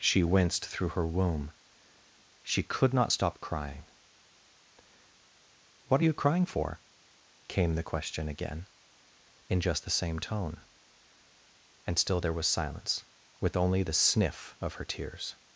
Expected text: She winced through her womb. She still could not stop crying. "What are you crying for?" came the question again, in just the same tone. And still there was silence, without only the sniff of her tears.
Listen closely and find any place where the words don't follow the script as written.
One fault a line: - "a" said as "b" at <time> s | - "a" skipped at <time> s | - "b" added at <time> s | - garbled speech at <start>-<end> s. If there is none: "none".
- "still" skipped at 2.6 s
- "without" said as "with" at 13.4 s